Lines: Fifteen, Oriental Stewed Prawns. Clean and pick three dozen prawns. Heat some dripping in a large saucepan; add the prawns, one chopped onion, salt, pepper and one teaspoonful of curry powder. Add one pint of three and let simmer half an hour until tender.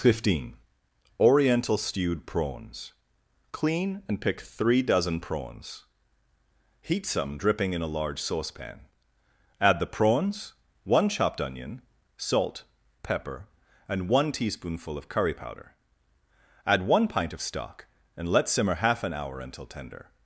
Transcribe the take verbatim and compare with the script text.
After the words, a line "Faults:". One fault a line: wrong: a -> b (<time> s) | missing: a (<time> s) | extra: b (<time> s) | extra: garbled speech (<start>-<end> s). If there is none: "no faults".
Fifteen, Oriental Stewed Prawns. Clean and pick three dozen prawns. Heat some dripping in a large saucepan; add the prawns, one chopped onion, salt, pepper and one teaspoonful of curry powder. Add one pint of stock and let simmer half an hour until tender.
Faults:
wrong: three -> stock (17.4 s)